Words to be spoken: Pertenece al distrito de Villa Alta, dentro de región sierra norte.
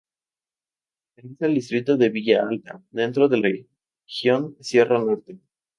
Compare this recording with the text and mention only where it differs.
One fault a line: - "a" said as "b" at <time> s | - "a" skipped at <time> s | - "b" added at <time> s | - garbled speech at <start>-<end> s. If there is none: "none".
none